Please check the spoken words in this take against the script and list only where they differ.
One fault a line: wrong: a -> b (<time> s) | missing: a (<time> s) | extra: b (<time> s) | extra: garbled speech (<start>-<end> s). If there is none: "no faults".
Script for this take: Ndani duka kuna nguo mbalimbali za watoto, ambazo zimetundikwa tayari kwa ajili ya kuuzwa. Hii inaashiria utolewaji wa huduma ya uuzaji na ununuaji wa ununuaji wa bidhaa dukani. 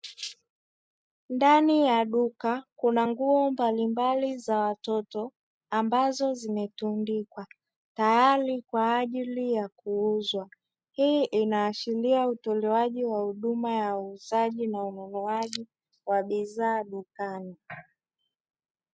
extra: ya (1.9 s)
missing: ununuaji wa (16.2 s)